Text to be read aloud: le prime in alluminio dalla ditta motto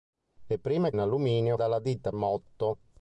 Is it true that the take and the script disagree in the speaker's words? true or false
false